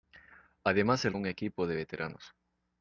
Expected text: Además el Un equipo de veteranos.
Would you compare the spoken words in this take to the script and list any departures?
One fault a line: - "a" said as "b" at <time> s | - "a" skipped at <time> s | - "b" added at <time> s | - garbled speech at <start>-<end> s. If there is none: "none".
none